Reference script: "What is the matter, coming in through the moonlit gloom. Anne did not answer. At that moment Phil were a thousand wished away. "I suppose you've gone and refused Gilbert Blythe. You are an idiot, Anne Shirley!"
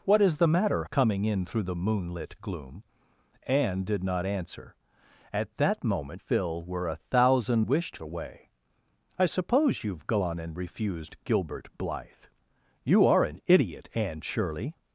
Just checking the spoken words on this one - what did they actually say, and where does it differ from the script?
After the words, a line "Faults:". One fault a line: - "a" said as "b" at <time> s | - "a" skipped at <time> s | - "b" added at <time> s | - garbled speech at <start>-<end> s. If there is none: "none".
"What is the matter, coming in through the moonlit gloom. Anne did not answer. At that moment Phil were a thousand wished away. "I suppose you've gone and refused Gilbert Blythe. You are an idiot, Anne Shirley!"
Faults:
none